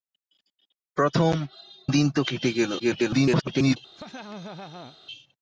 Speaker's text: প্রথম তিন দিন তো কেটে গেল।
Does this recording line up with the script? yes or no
no